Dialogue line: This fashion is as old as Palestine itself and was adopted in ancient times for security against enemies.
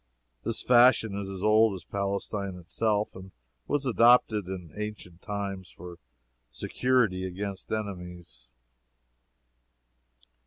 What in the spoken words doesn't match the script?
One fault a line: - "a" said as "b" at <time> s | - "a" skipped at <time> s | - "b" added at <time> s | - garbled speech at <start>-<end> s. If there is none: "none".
none